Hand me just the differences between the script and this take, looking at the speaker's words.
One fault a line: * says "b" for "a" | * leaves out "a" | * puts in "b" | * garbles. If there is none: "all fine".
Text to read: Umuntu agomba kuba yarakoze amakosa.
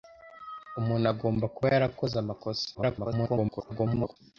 * garbles